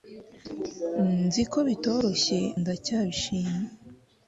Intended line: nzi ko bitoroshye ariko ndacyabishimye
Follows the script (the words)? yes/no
no